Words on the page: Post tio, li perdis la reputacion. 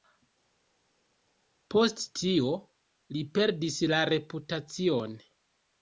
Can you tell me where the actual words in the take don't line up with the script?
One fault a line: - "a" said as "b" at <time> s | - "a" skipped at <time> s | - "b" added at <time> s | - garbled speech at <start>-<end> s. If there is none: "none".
none